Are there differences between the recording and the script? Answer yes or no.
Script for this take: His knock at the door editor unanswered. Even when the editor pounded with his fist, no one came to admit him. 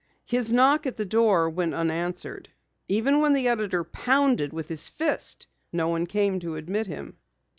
yes